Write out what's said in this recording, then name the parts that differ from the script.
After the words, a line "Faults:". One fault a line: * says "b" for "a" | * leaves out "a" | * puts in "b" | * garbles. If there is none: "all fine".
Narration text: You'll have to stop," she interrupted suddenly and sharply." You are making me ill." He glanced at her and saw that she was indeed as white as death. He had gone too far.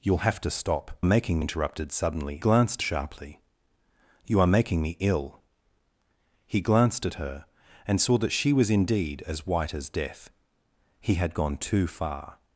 You'll have to stop," making interrupted suddenly glanced sharply." You are making me ill." He glanced at her and saw that she was indeed as white as death. He had gone too far.
Faults:
* says "making" for "she"
* says "glanced" for "and"